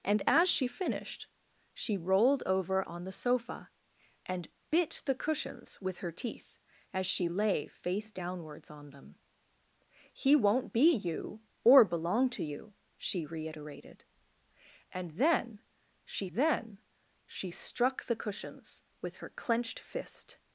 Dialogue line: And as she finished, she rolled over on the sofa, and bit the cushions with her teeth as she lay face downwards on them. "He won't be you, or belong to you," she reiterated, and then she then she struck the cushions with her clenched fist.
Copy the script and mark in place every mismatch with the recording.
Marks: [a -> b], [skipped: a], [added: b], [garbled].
And as she finished, she rolled over on the sofa, and bit the cushions with her teeth as she lay face downwards on them. "He won't be you, or belong to you," she reiterated, and then she then she struck the cushions with her clenched fist.